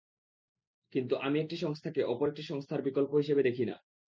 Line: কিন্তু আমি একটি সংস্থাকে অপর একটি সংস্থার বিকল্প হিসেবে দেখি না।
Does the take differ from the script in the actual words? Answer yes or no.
no